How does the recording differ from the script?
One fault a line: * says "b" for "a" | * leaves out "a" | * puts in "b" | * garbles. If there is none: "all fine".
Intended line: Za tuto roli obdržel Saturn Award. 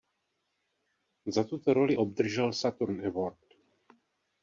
all fine